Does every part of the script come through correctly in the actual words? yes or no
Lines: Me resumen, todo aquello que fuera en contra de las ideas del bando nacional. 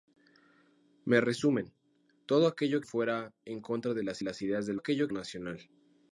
no